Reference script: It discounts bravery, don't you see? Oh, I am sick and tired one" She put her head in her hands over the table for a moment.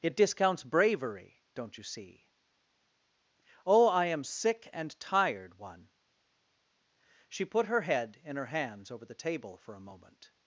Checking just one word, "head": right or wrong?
right